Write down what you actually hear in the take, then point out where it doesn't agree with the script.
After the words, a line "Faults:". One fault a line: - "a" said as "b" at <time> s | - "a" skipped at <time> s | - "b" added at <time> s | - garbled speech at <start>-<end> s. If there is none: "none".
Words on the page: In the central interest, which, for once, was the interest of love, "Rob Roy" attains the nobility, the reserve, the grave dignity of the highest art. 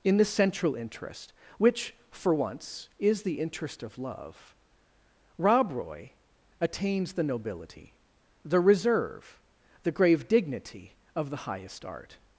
In the central interest, which, for once, is the interest of love, "Rob Roy" attains the nobility, the reserve, the grave dignity of the highest art.
Faults:
- "was" said as "is" at 3.0 s